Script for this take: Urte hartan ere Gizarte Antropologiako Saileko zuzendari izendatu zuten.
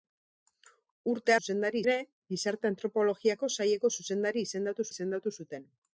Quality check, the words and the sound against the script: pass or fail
fail